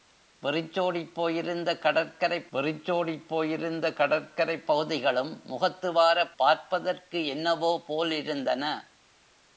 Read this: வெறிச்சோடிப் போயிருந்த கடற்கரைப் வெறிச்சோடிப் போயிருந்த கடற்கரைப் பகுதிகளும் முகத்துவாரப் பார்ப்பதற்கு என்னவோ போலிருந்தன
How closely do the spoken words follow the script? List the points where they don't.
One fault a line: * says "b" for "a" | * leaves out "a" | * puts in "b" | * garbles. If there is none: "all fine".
all fine